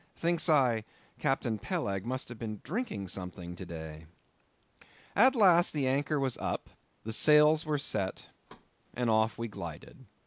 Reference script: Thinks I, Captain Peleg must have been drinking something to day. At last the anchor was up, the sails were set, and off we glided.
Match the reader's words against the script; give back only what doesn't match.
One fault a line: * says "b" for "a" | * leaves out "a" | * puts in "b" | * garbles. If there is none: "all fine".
all fine